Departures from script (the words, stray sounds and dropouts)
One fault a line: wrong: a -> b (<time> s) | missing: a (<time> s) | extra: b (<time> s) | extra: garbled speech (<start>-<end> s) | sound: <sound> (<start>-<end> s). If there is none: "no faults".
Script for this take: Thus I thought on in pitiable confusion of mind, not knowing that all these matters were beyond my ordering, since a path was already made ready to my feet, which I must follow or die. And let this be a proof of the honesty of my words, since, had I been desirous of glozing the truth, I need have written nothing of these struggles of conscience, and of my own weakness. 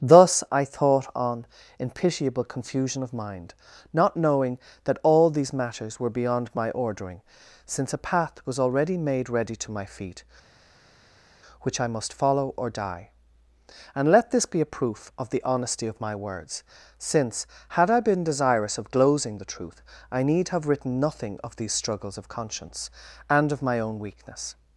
no faults